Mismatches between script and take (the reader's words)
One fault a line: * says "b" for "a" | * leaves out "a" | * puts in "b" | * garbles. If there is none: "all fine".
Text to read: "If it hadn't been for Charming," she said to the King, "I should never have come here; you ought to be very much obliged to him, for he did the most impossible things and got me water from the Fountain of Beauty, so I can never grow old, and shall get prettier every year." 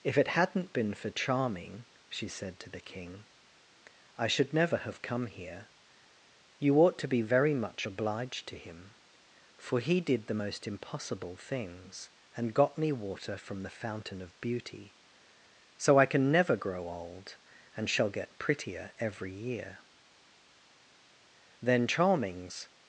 * puts in "Then Charming's"